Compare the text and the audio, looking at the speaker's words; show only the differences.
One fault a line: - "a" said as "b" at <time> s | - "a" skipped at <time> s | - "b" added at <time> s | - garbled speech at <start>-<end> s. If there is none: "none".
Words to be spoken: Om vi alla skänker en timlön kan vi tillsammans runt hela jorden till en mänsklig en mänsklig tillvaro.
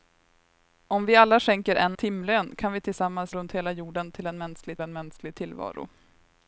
none